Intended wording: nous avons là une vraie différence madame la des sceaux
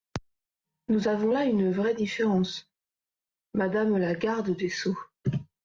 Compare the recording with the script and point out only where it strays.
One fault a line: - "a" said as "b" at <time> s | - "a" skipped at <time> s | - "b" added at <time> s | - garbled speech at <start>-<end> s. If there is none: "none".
- "garde" added at 4.2 s